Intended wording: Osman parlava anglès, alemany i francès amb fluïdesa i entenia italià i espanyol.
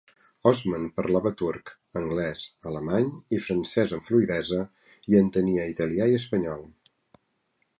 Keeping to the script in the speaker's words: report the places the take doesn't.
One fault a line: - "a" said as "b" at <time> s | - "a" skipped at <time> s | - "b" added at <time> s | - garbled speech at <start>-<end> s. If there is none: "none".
- "turc" added at 1.4 s